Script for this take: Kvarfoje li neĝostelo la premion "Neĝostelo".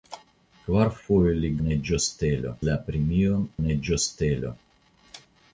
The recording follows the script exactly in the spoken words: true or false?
true